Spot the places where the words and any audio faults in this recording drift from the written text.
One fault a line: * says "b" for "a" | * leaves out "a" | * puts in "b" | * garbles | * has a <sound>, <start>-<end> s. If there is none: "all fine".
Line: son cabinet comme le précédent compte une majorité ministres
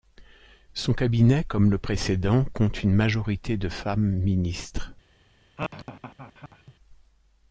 * puts in "de femmes"
* has a laugh, 5.6-6.7 s